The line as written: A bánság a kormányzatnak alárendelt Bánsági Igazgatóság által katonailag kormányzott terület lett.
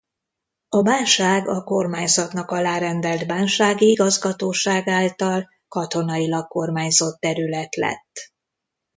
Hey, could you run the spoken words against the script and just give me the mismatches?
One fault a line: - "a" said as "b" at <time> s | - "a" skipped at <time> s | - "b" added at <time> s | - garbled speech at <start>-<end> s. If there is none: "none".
none